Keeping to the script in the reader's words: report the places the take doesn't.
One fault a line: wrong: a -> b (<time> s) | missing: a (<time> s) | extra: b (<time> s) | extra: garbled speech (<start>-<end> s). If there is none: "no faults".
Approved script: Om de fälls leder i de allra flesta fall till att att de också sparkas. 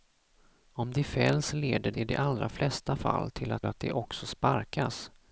no faults